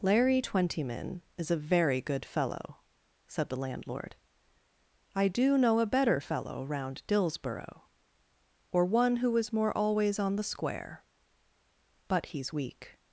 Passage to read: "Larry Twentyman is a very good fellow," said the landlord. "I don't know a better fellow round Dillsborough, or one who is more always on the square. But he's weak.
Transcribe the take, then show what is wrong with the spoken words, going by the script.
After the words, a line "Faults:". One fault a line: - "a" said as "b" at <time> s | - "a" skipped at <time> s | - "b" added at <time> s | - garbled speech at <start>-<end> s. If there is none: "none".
"Larry Twentyman is a very good fellow," said the landlord. "I do know a better fellow round Dillsborough, or one who is more always on the square. But he's weak.
Faults:
- "don't" said as "do" at 5.3 s